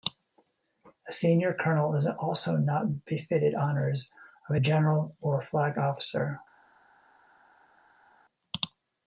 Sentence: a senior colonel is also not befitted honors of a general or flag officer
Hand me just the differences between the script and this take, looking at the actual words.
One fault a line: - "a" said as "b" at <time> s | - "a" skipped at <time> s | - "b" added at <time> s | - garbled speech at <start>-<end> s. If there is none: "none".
none